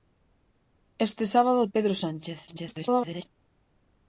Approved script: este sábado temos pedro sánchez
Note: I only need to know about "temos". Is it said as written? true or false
false